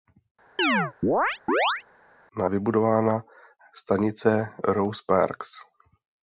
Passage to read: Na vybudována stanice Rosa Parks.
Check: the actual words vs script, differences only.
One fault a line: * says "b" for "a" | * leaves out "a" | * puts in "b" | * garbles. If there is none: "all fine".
all fine